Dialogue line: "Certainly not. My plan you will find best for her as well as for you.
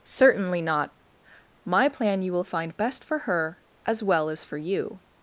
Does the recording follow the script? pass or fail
pass